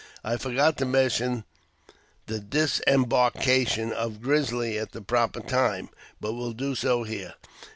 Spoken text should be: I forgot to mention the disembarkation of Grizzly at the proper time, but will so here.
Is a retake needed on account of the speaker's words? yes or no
yes